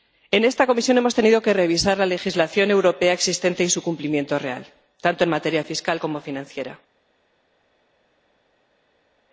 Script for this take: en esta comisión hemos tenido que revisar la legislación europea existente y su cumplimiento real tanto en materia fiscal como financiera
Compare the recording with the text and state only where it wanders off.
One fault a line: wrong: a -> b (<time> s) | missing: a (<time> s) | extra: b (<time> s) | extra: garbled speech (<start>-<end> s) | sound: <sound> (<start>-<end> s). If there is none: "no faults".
no faults